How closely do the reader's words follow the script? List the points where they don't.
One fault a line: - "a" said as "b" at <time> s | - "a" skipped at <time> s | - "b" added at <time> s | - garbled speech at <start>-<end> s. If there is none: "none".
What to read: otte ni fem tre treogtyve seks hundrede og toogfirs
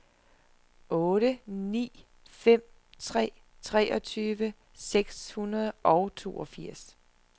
none